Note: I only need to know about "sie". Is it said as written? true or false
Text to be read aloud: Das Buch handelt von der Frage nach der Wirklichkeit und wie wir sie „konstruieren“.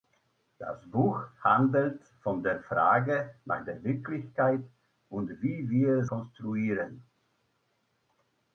false